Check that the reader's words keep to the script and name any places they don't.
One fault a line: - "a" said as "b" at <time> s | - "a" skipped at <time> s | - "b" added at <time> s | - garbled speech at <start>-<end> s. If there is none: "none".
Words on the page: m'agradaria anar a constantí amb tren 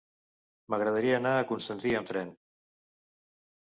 none